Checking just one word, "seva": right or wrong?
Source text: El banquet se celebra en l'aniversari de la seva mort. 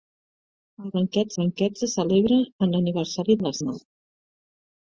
wrong